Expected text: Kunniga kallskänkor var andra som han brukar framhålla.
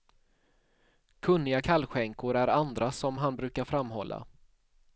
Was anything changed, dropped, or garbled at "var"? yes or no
yes